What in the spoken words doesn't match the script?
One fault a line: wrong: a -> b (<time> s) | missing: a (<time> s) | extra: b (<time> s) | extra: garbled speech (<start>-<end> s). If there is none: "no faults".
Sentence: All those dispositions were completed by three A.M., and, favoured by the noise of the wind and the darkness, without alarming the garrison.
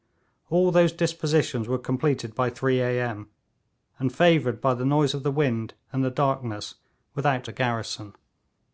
missing: alarming (7.5 s)